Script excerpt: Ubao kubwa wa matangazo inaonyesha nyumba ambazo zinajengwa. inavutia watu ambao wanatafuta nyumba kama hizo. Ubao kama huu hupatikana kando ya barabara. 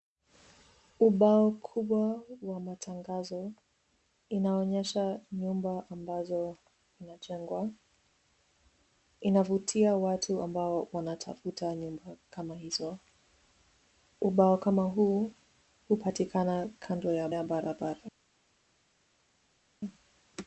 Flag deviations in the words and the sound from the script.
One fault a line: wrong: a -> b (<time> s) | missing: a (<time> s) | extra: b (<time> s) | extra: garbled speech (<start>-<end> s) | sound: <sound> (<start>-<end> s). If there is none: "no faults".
extra: ya (17.3 s)